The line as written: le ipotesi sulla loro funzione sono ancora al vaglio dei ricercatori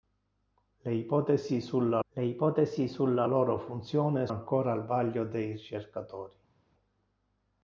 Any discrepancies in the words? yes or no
yes